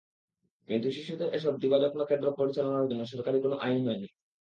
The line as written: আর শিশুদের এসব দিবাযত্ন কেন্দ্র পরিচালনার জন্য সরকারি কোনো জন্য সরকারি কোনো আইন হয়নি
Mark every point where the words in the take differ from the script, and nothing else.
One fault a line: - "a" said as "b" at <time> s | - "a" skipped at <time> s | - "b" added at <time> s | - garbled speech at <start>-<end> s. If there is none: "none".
- "আর" said as "কিন্তু" at 0.7 s
- "জন্য সরকারি কোনো" skipped at 3.6 s